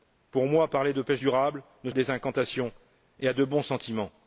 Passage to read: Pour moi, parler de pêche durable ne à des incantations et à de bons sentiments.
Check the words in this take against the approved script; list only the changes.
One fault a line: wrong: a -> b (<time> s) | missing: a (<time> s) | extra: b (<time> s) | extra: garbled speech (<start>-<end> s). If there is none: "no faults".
no faults